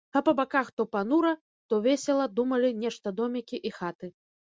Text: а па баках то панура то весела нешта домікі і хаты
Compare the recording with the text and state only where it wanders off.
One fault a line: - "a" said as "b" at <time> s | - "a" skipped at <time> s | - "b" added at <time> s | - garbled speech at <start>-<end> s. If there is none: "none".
- "думалі" added at 2.4 s